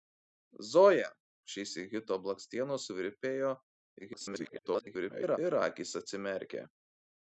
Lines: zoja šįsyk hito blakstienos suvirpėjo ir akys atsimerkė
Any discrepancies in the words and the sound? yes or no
yes